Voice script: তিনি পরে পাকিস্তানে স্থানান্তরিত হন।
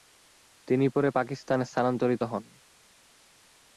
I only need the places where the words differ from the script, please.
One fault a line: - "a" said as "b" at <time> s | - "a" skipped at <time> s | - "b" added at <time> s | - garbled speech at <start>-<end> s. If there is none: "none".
none